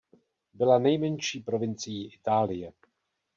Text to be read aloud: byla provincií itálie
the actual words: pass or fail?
fail